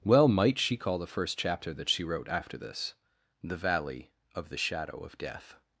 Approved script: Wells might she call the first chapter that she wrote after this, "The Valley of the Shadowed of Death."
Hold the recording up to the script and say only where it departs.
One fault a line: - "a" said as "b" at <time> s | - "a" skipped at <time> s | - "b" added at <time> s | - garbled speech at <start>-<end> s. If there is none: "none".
- "Wells" said as "Well" at 0.0 s
- "Shadowed" said as "Shadow" at 4.6 s